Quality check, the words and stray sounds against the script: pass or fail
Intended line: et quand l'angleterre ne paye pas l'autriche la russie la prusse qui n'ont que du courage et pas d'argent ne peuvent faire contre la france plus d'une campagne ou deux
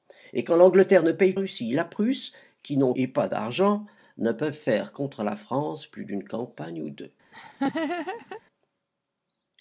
fail